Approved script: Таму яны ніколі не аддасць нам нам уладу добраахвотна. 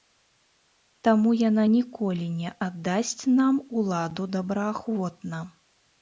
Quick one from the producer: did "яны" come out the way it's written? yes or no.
no